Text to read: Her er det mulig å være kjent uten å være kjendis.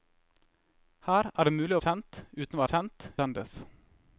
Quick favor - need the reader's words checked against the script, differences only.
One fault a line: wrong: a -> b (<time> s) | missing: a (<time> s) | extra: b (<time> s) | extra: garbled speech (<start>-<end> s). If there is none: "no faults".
missing: være (1.8 s)
wrong: være -> kjent (2.7 s)